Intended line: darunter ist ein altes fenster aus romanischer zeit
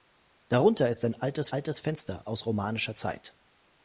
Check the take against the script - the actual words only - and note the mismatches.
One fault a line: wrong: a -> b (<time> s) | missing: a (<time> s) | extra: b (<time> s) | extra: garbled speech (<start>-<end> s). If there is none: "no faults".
extra: altes (1.5 s)